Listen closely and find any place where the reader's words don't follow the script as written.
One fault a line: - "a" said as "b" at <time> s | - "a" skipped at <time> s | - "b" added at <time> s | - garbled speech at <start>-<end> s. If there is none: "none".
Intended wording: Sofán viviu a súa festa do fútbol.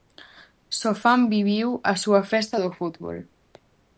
none